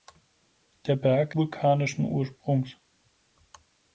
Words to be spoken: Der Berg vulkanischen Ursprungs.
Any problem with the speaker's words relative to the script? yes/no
no